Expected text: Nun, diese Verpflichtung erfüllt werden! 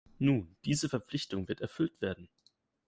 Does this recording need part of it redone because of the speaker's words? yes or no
yes